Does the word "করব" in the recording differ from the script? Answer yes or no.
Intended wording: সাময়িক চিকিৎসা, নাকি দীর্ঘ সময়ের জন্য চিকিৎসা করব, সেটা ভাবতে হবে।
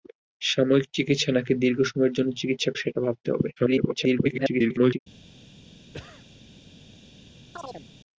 yes